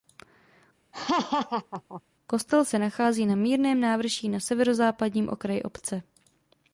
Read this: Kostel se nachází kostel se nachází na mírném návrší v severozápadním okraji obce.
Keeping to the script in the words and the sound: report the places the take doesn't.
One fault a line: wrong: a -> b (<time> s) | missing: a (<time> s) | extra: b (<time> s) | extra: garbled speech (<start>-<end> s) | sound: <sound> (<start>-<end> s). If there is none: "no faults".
sound: laugh (0.9-2.0 s)
missing: kostel se nachází (3.3 s)
wrong: v -> na (4.3 s)